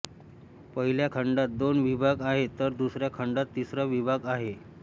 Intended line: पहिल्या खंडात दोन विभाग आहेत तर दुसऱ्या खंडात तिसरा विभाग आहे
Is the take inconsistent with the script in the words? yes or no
no